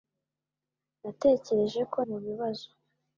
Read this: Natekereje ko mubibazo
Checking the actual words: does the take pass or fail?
pass